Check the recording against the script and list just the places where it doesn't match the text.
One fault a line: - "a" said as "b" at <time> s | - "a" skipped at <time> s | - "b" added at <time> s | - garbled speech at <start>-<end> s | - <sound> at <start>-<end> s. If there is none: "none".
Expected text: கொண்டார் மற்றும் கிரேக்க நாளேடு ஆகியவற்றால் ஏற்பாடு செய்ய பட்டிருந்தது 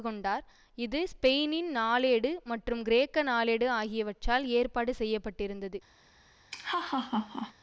- "இது ஸ்பெயினின் நாளேடு" added at 0.8 s
- laugh at 6.5-7.5 s